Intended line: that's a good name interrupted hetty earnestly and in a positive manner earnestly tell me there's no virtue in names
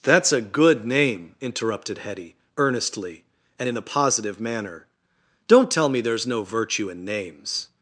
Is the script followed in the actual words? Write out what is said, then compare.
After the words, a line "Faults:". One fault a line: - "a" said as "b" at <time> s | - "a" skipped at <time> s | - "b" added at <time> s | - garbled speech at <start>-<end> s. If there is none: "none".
that's a good name interrupted hetty earnestly and in a positive manner don't tell me there's no virtue in names
Faults:
- "earnestly" said as "don't" at 5.5 s